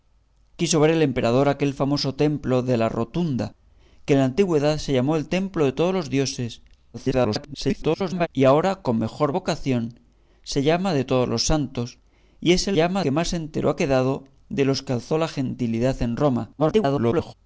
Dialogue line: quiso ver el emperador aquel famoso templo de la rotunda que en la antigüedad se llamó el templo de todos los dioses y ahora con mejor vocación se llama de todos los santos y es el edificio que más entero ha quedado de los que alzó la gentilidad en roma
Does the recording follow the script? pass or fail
fail